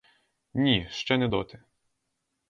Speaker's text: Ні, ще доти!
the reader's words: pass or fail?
fail